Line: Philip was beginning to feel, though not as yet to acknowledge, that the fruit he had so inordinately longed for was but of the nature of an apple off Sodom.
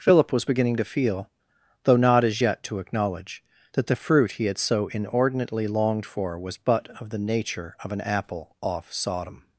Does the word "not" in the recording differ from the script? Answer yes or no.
no